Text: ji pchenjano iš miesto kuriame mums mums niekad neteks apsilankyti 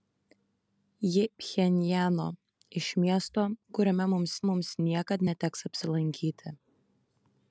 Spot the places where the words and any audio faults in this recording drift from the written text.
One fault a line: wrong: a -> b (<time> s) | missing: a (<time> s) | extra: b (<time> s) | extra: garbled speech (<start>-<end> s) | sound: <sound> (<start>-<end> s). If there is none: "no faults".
no faults